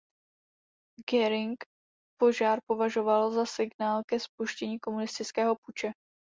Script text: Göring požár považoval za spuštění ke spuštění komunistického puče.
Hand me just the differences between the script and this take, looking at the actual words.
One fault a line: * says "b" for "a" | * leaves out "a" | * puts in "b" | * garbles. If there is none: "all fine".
* says "signál" for "spuštění"